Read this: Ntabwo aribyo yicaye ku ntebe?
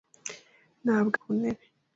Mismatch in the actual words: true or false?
true